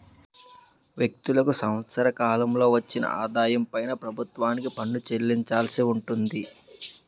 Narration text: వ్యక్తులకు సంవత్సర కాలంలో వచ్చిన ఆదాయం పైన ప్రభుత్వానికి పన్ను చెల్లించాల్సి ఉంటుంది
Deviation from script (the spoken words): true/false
false